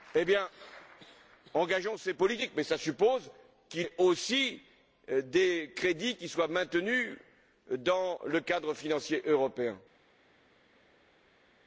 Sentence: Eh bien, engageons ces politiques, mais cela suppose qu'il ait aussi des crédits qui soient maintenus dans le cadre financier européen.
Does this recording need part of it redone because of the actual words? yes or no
no